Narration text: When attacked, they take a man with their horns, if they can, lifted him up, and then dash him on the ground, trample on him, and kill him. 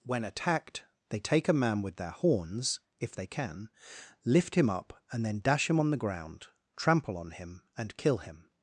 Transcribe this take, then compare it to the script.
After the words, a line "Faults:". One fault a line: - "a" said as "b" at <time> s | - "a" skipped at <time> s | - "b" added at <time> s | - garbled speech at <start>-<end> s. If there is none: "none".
When attacked, they take a man with their horns, if they can, lift him up, and then dash him on the ground, trample on him, and kill him.
Faults:
- "lifted" said as "lift" at 4.2 s